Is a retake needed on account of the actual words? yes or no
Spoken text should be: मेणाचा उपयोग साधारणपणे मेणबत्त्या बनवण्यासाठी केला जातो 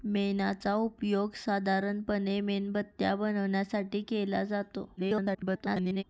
yes